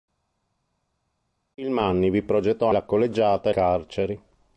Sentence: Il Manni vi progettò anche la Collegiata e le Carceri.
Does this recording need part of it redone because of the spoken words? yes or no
yes